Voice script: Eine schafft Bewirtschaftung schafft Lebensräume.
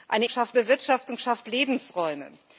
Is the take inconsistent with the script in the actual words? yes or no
no